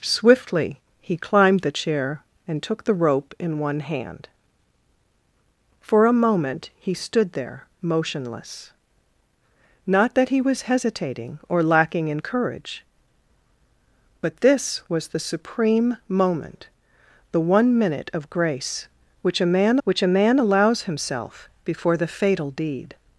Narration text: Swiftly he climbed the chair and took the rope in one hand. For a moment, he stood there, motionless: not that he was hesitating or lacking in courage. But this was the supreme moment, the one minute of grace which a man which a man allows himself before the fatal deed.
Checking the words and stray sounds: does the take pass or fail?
pass